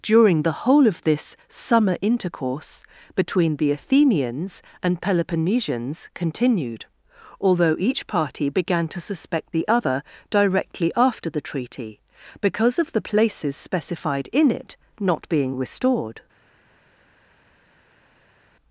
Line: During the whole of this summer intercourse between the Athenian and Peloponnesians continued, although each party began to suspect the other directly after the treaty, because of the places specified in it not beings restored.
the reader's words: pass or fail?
fail